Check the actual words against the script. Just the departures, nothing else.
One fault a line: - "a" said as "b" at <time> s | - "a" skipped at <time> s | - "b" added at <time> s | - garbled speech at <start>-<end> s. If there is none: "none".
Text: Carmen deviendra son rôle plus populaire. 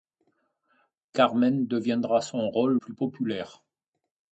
none